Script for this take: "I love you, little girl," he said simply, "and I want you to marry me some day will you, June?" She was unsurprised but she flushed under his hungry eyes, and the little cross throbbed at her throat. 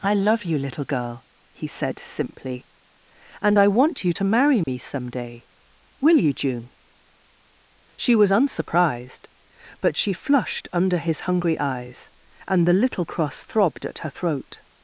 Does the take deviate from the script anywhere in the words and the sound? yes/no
yes